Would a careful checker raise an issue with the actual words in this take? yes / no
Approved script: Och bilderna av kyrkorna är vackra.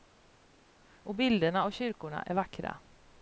no